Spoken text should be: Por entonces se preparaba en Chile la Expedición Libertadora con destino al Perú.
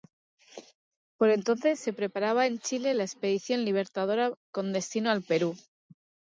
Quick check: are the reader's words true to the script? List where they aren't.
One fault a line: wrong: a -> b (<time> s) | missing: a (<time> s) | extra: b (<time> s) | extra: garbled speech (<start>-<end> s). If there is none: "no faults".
no faults